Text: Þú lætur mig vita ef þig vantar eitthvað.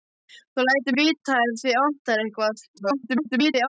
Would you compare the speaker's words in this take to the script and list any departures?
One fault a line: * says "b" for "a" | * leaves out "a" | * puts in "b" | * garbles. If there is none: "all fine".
* leaves out "mig"
* garbles